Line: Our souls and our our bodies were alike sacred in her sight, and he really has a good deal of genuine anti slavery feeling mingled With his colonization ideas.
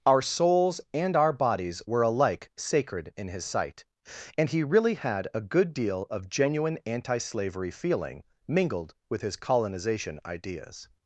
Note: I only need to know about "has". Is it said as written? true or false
false